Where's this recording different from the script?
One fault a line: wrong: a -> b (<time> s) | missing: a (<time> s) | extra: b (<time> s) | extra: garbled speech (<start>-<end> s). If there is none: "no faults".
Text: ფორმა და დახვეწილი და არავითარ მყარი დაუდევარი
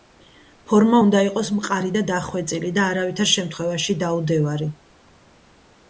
extra: უნდა იყოს მყარი (1.0 s)
wrong: მყარი -> შემთხვევაში (3.3 s)